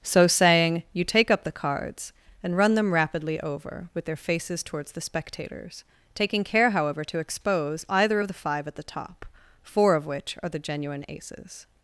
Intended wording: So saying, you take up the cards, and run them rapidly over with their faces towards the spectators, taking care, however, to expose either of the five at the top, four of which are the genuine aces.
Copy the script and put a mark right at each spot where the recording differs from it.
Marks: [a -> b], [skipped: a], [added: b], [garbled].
So saying, you take up the cards, and run them rapidly over with their faces towards the spectators, taking care, however, to expose either of the five at the top, four of which are the genuine aces.